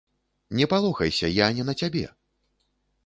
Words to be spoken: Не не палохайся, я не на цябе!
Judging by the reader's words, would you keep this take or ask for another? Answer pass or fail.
fail